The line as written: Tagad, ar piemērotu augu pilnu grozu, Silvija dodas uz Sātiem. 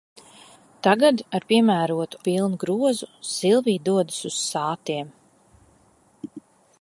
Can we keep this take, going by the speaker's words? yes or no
no